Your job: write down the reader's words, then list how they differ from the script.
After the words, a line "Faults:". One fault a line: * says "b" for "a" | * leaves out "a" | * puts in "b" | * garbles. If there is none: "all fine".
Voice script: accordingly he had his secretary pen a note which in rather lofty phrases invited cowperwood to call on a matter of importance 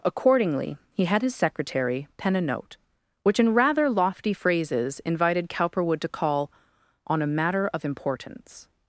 accordingly he had his secretary pen a note which in rather lofty phrases invited cowperwood to call on a matter of importance
Faults:
all fine